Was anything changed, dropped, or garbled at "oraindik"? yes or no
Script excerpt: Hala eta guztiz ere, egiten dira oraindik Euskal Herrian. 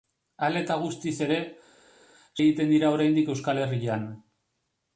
no